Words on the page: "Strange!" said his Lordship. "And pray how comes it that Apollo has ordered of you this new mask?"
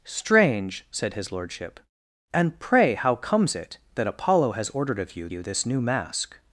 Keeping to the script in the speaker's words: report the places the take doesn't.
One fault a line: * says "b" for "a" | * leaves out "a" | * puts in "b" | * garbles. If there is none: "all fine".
* puts in "you"